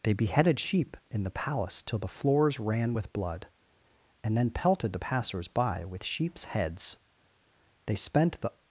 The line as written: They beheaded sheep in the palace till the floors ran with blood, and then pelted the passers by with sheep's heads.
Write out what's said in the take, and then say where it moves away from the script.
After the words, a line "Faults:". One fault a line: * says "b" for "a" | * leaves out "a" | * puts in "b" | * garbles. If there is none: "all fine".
They beheaded sheep in the palace till the floors ran with blood, and then pelted the passers by with sheep's heads. They spent the
Faults:
* puts in "They spent the"